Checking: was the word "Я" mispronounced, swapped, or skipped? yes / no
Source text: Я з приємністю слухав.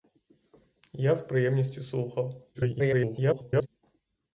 no